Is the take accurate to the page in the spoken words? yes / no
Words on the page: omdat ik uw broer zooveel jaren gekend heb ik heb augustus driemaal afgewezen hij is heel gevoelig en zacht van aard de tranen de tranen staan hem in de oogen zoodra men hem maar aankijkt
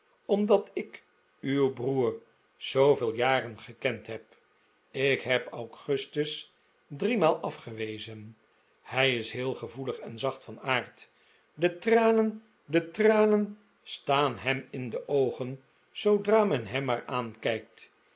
yes